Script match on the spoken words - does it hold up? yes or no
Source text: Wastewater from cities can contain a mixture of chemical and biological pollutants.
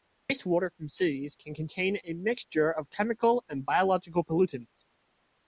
yes